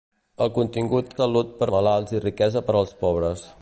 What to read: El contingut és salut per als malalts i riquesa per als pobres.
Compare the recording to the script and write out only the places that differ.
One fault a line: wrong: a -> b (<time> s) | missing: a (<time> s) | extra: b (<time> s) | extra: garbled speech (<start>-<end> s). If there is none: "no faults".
missing: és (1.1 s)
missing: als (1.7 s)